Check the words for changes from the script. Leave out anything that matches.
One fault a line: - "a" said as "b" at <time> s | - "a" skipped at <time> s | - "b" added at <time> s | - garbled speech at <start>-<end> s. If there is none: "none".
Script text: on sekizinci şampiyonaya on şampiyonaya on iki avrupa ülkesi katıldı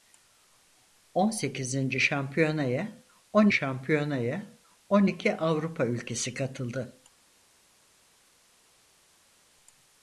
none